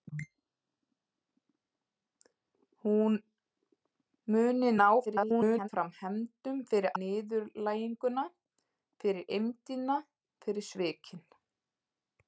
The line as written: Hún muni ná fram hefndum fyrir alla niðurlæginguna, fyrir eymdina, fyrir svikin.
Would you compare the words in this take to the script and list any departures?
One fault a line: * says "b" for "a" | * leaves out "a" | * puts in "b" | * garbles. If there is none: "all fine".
* garbles
* leaves out "alla"